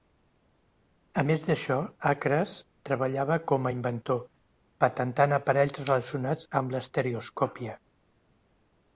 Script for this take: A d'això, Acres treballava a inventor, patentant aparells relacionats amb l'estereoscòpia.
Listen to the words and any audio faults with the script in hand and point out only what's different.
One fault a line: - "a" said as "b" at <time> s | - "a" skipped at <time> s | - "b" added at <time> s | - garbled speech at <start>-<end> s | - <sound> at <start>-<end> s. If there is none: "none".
- "més" added at 1.3 s
- "com" added at 3.5 s